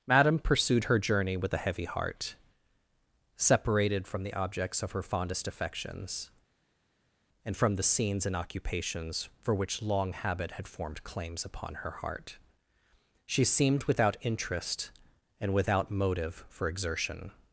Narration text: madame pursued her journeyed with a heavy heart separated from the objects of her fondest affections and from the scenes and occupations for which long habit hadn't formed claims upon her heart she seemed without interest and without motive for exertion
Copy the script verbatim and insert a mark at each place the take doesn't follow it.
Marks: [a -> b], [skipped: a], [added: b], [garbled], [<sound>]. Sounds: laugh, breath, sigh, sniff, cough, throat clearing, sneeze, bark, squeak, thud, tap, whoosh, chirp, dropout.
madame pursued her [journeyed -> journey] with a heavy heart separated from the objects of her fondest affections and from the scenes and occupations for which long habit [hadn't -> had] formed claims upon her heart she seemed without interest and without motive for exertion